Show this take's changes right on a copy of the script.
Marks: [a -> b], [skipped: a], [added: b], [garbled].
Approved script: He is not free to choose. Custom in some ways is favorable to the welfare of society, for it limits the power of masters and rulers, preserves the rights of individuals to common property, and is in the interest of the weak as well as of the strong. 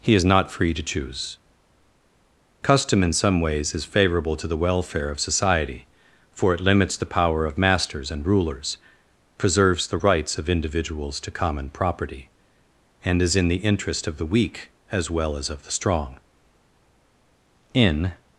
He is not free to choose. Custom in some ways is favorable to the welfare of society, for it limits the power of masters and rulers, preserves the rights of individuals to common property, and is in the interest of the weak as well as of the strong. [added: In]